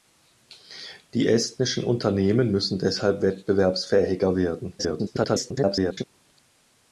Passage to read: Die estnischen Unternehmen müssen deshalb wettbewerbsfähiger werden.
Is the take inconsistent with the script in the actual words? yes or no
yes